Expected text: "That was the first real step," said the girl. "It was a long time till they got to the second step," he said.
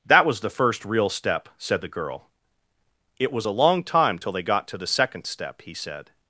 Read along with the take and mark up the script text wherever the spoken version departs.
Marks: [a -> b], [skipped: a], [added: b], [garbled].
"That was the first real step," said the girl. "It was a long time till they got to the second step," he said.